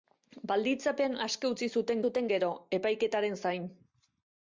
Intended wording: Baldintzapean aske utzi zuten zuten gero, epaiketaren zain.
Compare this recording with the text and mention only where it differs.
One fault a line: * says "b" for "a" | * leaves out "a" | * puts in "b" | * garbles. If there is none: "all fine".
all fine